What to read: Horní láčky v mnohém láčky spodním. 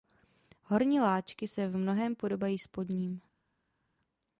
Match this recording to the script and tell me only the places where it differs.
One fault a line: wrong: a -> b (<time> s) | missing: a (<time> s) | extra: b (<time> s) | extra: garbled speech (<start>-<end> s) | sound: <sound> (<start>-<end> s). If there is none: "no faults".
extra: se (1.5 s)
wrong: láčky -> podobají (2.1 s)